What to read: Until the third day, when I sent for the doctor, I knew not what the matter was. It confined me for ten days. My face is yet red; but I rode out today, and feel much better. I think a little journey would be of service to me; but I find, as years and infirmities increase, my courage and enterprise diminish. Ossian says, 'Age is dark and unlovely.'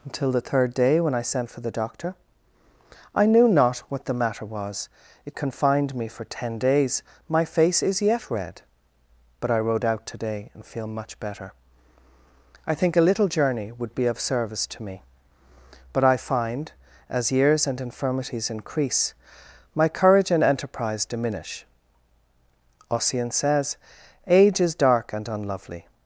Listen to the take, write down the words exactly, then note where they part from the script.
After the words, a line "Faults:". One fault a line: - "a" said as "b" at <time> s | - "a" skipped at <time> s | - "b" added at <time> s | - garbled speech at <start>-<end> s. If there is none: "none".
Until the third day, when I sent for the doctor, I knew not what the matter was. It confined me for ten days. My face is yet red; but I rode out today, and feel much better. I think a little journey would be of service to me; but I find, as years and infirmities increase, my courage and enterprise diminish. Ossian says, 'Age is dark and unlovely.'
Faults:
none